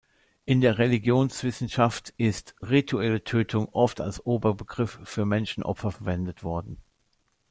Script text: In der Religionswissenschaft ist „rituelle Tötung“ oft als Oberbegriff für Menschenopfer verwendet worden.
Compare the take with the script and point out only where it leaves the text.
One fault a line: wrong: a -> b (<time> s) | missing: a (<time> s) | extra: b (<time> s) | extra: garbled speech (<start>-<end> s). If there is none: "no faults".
no faults